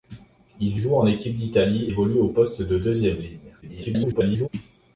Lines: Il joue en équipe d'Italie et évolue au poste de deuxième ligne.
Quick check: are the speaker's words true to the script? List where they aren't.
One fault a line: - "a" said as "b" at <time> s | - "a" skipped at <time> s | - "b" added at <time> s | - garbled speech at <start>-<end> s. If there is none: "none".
- "et" skipped at 1.9 s
- garbled speech at 3.6-4.5 s